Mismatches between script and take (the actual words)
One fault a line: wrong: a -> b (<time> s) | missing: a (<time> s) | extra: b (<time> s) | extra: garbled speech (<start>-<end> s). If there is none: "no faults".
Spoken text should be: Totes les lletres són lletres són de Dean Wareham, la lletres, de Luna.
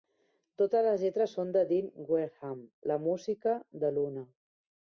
missing: lletres són (1.5 s)
wrong: lletres -> música (3.1 s)